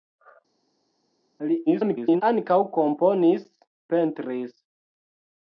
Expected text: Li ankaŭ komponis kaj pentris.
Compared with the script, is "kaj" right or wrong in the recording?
wrong